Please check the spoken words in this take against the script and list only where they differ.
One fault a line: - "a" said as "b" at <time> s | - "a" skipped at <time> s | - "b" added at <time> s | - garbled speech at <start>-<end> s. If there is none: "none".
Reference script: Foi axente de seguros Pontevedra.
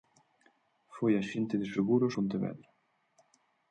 none